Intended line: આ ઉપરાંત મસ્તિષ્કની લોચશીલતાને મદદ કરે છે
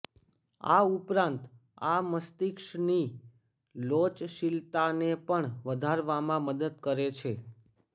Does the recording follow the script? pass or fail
fail